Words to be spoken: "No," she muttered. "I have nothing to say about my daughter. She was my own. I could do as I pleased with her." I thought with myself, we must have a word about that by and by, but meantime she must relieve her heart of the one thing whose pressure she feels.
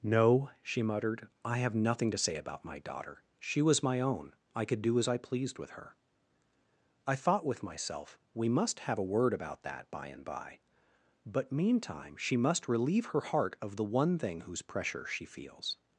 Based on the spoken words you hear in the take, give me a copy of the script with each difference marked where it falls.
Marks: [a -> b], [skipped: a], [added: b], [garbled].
"No," she muttered. "I have nothing to say about my daughter. She was my own. I could do as I pleased with her." I thought with myself, we must have a word about that by and by, but meantime she must relieve her heart of the one thing whose pressure she feels.